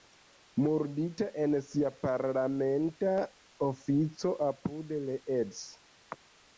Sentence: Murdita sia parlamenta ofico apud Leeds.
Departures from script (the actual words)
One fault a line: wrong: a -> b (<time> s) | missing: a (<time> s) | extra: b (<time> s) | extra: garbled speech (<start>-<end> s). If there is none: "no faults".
extra: en (1.4 s)